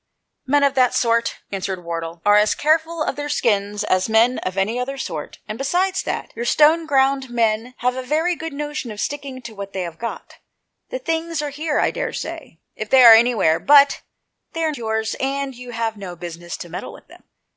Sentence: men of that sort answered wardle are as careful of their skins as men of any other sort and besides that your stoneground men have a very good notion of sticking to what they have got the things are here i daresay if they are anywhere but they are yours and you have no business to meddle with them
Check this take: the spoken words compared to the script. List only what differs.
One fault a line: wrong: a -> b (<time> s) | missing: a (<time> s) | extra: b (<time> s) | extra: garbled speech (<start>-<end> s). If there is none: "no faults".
no faults